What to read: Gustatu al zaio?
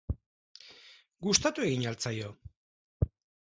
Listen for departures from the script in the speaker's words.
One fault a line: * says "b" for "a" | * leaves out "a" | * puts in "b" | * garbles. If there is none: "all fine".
* puts in "egin"